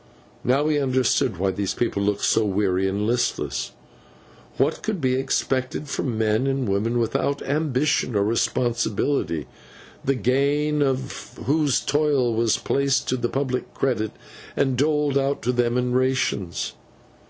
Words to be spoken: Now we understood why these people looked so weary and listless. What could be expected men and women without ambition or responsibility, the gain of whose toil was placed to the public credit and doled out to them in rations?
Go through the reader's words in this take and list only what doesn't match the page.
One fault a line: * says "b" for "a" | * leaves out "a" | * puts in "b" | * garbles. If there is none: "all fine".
* puts in "from"